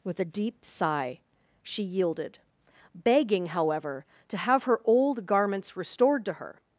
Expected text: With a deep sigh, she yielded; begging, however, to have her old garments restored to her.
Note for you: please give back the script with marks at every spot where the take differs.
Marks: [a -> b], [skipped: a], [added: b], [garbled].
With a deep sigh, she yielded; begging, however, to have her old garments restored to her.